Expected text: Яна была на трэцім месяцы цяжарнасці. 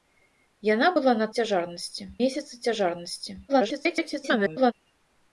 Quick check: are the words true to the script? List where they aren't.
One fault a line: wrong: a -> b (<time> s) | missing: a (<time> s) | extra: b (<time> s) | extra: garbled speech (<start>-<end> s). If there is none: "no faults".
wrong: трэцім -> цяжарнасці (1.4 s)
extra: garbled speech (3.5-4.7 s)